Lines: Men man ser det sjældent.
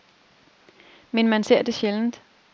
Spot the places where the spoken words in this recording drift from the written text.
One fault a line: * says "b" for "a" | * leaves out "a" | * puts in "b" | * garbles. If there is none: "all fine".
all fine